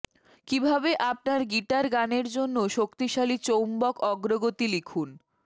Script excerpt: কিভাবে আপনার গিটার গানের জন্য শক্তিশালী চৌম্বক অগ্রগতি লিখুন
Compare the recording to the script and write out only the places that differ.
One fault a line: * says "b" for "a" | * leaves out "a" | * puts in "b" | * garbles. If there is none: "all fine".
all fine